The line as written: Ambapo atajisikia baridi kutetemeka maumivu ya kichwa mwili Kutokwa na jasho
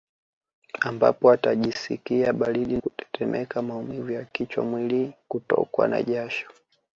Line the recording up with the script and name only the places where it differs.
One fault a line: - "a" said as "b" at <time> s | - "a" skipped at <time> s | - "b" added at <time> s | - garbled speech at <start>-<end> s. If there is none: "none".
none